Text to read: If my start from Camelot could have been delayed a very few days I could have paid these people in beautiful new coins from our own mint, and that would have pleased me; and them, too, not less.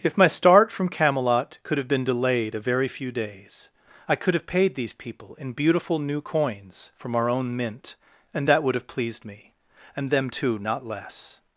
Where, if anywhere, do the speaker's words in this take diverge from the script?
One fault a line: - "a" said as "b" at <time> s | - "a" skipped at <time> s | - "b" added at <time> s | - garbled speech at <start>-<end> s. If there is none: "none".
none